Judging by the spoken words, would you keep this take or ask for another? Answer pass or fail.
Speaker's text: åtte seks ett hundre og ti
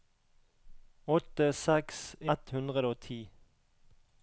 pass